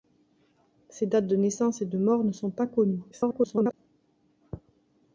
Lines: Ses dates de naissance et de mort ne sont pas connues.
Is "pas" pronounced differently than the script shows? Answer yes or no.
no